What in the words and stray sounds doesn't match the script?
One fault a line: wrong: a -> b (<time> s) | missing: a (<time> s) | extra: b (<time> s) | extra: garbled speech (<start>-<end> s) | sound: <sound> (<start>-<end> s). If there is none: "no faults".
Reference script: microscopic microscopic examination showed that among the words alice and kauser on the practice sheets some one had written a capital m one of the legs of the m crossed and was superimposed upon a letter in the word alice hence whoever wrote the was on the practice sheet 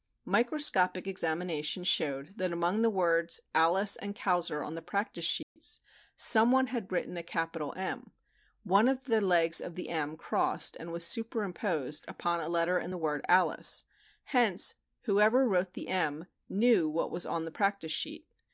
missing: microscopic (1.1 s)
sound: dropout (5.4-5.6 s)
extra: m knew what (15.9 s)